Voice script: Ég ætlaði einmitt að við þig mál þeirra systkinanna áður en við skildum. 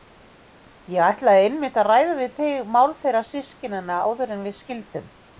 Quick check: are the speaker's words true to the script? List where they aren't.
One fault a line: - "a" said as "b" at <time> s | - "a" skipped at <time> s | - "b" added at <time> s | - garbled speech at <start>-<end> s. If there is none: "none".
- "ræða" added at 1.9 s